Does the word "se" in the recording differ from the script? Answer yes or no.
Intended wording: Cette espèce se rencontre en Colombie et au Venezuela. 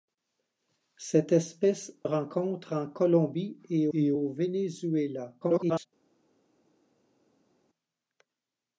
yes